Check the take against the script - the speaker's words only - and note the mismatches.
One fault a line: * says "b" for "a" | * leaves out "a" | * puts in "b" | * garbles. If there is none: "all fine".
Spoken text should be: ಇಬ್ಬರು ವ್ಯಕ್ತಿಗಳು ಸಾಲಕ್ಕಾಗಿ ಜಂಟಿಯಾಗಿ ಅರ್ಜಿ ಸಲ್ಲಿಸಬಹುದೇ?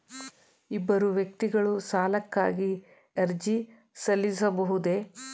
* leaves out "ಜಂಟಿಯಾಗಿ"